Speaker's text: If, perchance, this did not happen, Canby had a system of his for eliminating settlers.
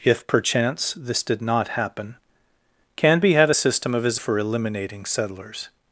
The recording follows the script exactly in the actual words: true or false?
true